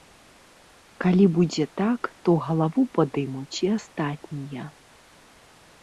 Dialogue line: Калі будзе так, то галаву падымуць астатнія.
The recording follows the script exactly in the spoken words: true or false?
false